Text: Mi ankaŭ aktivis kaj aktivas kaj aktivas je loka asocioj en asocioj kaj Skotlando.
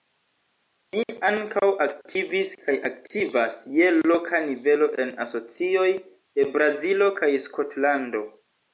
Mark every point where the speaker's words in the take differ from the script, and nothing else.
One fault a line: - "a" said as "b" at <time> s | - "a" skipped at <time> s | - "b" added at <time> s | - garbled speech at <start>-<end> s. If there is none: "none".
- "kaj aktivas" skipped at 3.6 s
- "asocioj" said as "nivelo" at 4.5 s
- "de Brazilo" added at 6.0 s